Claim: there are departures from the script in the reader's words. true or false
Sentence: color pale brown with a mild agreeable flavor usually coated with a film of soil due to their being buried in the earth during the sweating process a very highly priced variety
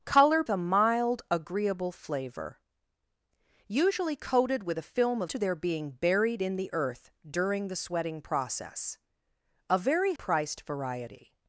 true